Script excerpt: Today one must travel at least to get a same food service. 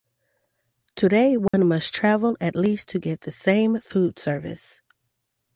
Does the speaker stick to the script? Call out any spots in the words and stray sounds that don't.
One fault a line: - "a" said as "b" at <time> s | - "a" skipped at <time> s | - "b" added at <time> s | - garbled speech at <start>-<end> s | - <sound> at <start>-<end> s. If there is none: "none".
- dropout at 1.5-1.5 s
- "a" said as "the" at 3.2 s